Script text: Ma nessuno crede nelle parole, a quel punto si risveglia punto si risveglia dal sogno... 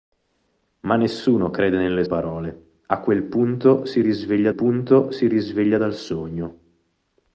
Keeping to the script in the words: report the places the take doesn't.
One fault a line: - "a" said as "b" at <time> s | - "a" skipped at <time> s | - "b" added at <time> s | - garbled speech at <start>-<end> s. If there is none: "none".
none